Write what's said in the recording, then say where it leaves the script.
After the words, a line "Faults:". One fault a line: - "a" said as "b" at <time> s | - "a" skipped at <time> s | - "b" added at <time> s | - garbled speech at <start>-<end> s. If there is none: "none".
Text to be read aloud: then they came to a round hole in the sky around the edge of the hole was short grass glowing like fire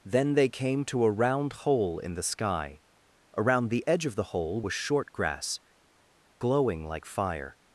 then they came to a round hole in the sky around the edge of the hole was short grass glowing like fire
Faults:
none